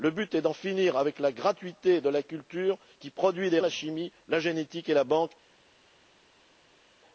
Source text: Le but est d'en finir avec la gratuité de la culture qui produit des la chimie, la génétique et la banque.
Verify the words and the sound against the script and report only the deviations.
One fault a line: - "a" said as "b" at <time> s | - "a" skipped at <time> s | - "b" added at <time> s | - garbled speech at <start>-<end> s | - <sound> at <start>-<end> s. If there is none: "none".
none